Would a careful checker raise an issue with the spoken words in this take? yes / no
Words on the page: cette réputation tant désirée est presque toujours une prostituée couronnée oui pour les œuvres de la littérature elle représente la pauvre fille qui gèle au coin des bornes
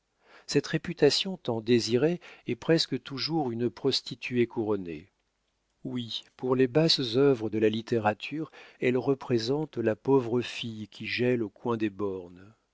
yes